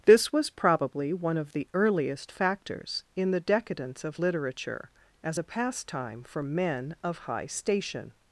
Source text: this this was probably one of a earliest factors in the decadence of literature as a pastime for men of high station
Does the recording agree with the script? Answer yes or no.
no